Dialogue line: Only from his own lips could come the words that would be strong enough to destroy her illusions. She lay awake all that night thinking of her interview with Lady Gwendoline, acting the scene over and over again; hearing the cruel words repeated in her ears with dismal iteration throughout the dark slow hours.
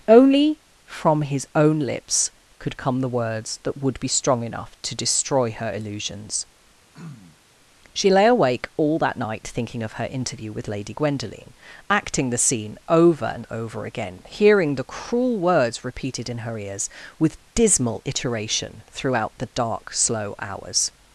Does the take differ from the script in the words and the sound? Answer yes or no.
yes